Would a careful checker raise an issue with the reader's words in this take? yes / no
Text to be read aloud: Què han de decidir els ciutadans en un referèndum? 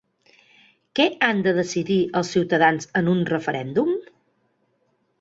no